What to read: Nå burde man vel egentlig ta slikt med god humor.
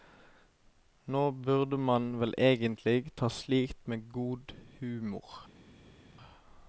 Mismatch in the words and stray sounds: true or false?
false